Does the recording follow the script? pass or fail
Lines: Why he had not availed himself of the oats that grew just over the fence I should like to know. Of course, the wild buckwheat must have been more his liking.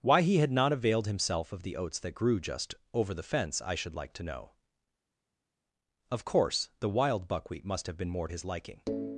pass